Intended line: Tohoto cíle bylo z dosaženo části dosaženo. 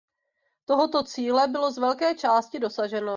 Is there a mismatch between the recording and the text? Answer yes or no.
yes